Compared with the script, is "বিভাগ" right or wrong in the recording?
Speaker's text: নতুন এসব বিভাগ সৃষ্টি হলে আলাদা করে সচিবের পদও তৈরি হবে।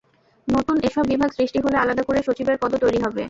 right